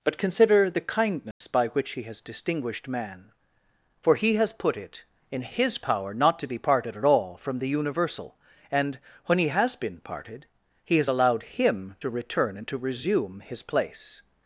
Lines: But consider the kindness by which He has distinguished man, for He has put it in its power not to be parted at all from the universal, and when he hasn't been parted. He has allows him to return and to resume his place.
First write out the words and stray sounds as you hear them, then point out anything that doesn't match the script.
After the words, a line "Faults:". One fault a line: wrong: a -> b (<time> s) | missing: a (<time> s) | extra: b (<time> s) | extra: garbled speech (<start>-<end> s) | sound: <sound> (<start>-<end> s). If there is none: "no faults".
But consider the kindness by which He has distinguished man, for He has put it in his power not to be parted at all from the universal, and when he has been parted. He has allowed him to return and to resume his place.
Faults:
sound: dropout (1.3-1.4 s)
wrong: its -> his (5.4 s)
wrong: hasn't -> has (9.5 s)
wrong: allows -> allowed (11.1 s)